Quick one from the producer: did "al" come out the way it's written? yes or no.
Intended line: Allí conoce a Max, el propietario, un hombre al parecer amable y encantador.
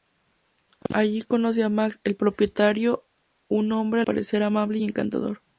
no